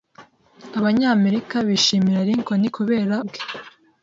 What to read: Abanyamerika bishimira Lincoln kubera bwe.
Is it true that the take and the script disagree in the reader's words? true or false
false